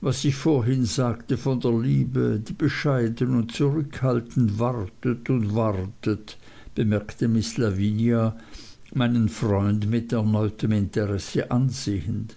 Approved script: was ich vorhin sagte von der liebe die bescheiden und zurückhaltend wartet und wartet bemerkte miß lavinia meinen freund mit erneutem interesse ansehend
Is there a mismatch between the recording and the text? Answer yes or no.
no